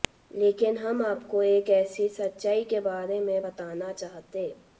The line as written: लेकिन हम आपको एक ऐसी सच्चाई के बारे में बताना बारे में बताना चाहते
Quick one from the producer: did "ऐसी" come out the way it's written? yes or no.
yes